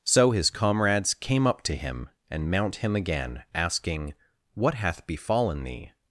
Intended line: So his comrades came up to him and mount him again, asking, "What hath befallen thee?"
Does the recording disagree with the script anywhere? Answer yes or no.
no